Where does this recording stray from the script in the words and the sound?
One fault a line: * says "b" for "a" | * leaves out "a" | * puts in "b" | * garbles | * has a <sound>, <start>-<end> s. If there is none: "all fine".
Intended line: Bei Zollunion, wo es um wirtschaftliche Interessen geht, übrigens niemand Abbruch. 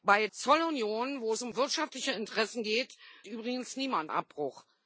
all fine